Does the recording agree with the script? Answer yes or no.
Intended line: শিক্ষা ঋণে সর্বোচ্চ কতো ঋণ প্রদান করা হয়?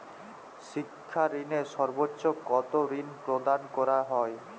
yes